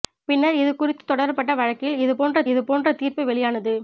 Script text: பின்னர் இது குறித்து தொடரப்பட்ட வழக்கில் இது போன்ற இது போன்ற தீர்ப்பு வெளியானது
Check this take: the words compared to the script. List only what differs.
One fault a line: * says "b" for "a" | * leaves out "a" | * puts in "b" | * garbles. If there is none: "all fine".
all fine